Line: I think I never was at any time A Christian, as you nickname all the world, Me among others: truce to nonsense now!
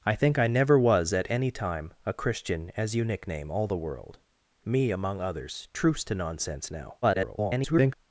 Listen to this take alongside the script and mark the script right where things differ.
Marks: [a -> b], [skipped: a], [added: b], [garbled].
I think I never was at any time A Christian, as you nickname all the world, Me among others: truce to nonsense now! [garbled]